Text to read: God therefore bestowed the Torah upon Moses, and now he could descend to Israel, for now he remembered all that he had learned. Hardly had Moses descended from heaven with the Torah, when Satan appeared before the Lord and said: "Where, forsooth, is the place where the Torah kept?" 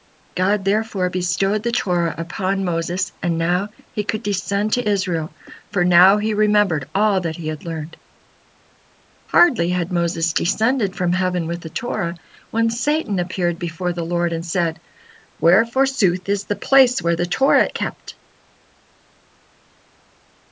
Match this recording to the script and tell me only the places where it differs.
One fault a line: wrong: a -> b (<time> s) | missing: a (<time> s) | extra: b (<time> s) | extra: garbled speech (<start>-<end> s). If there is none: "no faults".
no faults